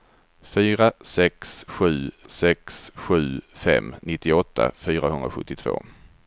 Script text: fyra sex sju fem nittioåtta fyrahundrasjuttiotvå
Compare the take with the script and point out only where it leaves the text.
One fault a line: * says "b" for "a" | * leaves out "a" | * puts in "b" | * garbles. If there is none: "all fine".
* puts in "sex sju"